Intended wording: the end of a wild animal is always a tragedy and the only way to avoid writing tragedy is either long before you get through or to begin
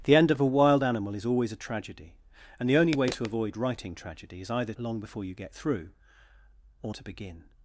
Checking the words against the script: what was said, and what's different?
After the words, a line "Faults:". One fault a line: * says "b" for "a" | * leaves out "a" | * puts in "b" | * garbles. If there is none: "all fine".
the end of a wild animal is always a tragedy and the only way to avoid writing tragedy is either long before you get through or to begin
Faults:
all fine